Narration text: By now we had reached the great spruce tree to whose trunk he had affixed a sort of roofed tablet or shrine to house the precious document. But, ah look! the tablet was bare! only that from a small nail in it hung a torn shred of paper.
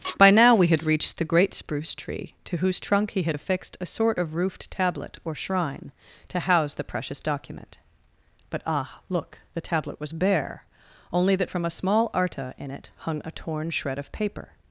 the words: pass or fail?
fail